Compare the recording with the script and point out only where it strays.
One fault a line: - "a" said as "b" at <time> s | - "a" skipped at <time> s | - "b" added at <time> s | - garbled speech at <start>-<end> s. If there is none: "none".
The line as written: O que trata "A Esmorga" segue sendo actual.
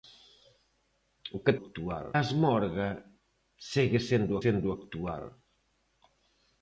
- "trata" said as "actual" at 1.6 s
- "sendo" added at 4.4 s